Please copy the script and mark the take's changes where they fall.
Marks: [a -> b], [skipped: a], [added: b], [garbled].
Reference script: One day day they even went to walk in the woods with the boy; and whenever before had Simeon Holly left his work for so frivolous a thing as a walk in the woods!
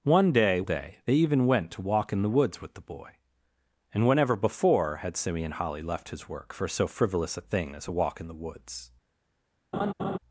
One day day they even went to walk in the woods with the boy; and whenever before had Simeon Holly left his work for so frivolous a thing as a walk in the woods!